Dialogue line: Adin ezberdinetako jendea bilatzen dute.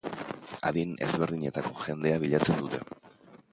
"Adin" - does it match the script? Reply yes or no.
yes